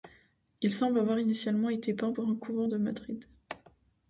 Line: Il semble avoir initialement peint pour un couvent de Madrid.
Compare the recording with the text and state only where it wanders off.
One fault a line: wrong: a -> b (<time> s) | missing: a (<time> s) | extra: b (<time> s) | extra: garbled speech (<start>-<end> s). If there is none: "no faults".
extra: été (1.7 s)